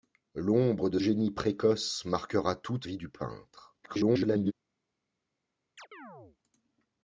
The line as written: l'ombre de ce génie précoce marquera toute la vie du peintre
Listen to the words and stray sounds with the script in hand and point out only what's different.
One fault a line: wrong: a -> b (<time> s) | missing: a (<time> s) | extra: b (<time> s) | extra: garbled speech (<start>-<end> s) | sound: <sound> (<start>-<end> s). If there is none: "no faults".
missing: ce (1.0 s)
missing: la (2.9 s)
extra: garbled speech (3.8-4.5 s)
sound: chirp (5.8-6.4 s)